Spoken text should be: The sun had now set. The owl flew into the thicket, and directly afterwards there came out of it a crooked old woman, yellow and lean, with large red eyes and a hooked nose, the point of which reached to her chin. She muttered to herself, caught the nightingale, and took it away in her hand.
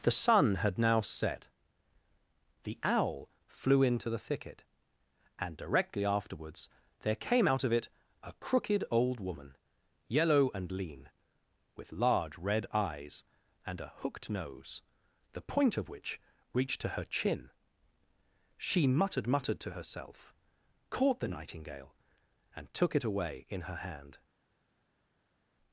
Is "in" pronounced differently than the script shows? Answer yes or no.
no